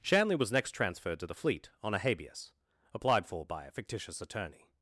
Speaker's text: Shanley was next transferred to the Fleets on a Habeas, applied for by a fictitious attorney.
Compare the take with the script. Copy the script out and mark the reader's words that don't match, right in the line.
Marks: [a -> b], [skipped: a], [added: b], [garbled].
Shanley was next transferred to the [Fleets -> Fleet] on a Habeas, applied for by a fictitious attorney.